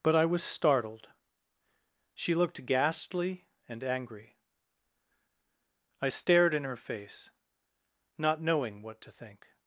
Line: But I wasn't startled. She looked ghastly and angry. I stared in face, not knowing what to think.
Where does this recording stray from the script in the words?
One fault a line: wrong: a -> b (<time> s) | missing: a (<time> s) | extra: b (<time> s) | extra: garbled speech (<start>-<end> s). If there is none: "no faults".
wrong: wasn't -> was (0.2 s)
extra: her (6.6 s)